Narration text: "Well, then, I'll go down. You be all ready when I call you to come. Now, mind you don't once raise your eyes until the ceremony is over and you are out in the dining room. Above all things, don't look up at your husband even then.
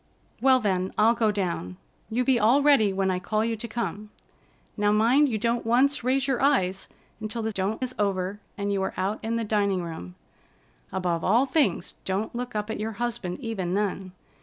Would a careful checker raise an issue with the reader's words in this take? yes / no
yes